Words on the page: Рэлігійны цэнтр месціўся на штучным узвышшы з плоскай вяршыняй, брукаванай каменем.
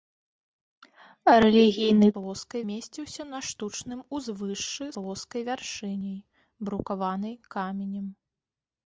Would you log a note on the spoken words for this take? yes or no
yes